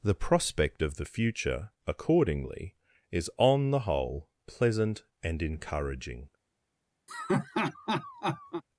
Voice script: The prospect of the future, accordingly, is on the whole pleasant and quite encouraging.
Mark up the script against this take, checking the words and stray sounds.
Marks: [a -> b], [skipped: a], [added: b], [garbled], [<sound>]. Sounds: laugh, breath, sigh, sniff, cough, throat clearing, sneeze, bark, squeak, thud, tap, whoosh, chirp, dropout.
The prospect of the future, accordingly, is on the whole pleasant and [skipped: quite] encouraging. [laugh]